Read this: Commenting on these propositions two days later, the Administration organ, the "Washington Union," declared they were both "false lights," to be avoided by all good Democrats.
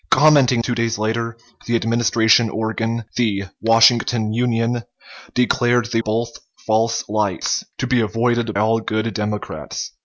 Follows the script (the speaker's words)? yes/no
no